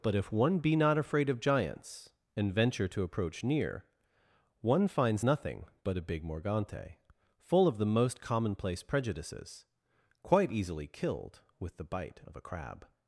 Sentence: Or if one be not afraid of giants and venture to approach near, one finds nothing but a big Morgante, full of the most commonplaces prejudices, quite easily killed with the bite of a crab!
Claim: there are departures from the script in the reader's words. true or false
true